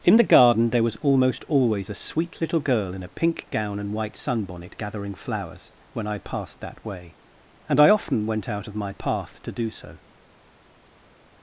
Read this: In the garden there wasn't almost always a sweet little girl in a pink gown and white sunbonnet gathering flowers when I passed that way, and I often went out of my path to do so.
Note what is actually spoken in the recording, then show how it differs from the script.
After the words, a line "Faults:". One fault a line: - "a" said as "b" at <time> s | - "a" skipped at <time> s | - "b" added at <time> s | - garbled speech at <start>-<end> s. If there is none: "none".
In the garden there was almost always a sweet little girl in a pink gown and white sunbonnet gathering flowers when I passed that way, and I often went out of my path to do so.
Faults:
- "wasn't" said as "was" at 0.8 s